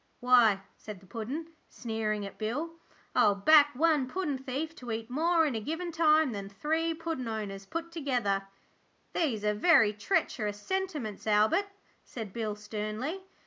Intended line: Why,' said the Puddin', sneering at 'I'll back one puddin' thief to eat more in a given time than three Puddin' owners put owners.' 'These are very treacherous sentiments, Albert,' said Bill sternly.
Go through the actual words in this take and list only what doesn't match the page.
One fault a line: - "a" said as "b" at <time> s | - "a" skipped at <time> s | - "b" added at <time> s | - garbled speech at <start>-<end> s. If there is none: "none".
- "Bill" added at 2.4 s
- "owners" said as "together" at 7.9 s